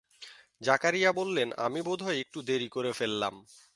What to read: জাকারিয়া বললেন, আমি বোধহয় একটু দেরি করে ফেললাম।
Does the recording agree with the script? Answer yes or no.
yes